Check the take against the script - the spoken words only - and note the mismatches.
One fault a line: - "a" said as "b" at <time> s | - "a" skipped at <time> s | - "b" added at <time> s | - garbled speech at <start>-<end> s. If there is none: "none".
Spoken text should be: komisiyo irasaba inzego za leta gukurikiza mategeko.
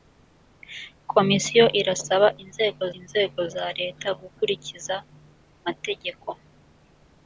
- "inzego" added at 3.0 s